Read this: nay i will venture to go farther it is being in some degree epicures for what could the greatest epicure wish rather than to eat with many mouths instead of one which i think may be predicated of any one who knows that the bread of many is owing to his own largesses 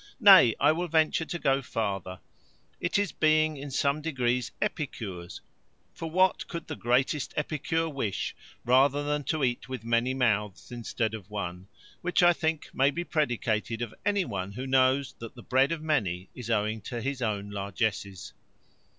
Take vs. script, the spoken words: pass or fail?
pass